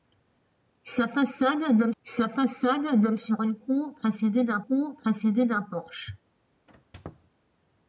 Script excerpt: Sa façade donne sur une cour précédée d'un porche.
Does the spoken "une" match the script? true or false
true